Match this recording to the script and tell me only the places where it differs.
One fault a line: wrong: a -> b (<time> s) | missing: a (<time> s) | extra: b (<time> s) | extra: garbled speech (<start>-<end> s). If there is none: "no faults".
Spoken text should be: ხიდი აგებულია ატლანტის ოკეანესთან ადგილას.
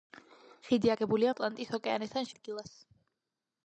no faults